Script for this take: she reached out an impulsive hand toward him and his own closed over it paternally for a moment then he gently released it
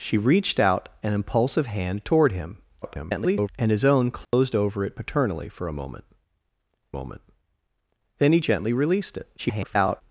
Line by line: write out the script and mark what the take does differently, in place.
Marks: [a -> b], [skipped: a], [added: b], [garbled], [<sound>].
she reached out an impulsive hand toward him [garbled] and his own closed [dropout] over it paternally for a moment [added: moment] then he gently released it [garbled]